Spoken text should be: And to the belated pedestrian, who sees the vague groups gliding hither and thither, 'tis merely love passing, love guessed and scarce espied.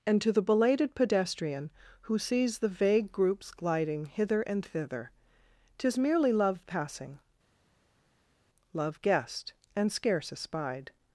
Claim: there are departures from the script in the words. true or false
false